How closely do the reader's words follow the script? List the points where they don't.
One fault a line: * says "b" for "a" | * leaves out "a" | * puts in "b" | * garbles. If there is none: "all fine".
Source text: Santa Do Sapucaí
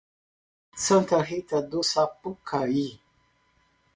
* puts in "Rita"